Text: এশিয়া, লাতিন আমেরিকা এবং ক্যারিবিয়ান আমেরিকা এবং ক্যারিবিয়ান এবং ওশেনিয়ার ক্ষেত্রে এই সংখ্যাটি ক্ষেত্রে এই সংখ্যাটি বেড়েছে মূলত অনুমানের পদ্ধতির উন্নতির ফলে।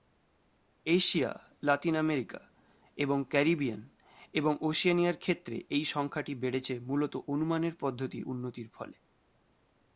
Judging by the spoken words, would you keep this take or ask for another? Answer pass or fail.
fail